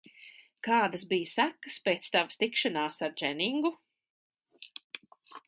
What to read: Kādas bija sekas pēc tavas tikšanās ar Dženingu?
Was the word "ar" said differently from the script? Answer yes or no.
no